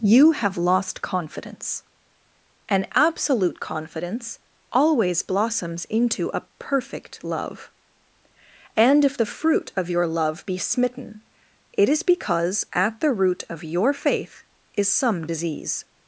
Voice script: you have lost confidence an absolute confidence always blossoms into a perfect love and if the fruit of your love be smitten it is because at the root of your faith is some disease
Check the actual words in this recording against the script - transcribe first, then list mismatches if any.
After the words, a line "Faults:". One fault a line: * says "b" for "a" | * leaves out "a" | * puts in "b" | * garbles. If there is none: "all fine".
you have lost confidence an absolute confidence always blossoms into a perfect love and if the fruit of your love be smitten it is because at the root of your faith is some disease
Faults:
all fine